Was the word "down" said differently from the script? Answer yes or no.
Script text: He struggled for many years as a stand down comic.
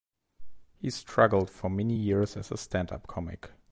yes